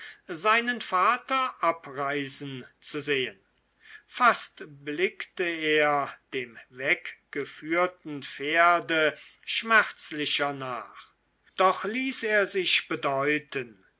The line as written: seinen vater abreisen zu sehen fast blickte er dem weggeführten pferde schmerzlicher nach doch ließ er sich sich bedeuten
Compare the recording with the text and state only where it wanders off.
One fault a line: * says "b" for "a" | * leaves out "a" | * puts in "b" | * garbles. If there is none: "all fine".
* leaves out "sich"